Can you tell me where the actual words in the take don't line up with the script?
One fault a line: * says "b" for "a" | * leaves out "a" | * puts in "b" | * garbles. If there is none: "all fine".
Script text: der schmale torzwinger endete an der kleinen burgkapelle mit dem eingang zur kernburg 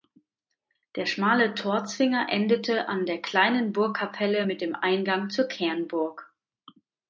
all fine